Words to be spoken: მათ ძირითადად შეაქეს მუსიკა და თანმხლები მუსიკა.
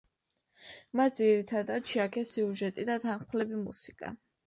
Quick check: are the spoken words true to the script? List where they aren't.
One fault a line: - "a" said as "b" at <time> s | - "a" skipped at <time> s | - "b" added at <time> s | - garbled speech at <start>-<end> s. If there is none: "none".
- "მუსიკა" said as "სიუჟეტი" at 2.4 s